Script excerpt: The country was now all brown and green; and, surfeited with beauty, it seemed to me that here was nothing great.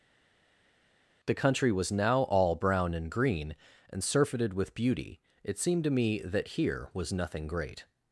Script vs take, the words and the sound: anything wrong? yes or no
no